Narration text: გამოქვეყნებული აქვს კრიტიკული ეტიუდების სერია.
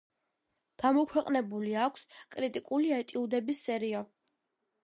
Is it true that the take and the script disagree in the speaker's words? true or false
false